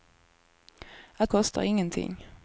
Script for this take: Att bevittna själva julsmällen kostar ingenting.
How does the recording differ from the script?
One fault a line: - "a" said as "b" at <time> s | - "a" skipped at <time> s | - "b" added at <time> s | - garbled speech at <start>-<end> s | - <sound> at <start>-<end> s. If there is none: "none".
- "bevittna själva julsmällen" skipped at 1.3 s